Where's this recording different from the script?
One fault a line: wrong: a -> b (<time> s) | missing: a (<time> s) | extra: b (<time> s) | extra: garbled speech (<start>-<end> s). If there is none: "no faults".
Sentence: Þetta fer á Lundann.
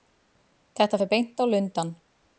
extra: beint (1.1 s)